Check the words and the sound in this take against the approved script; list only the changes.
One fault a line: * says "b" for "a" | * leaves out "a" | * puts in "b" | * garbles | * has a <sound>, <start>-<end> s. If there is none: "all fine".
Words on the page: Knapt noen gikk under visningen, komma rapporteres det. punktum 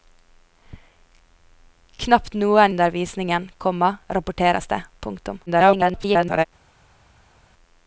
* leaves out "gikk"
* garbles